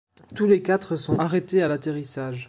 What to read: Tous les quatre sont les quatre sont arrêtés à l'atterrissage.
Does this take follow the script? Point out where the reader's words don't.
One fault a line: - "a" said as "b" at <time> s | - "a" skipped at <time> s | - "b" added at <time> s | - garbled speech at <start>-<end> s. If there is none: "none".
- "les quatre sont" skipped at 1.2 s